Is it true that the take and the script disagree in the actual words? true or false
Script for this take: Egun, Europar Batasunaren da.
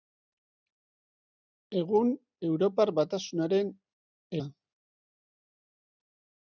false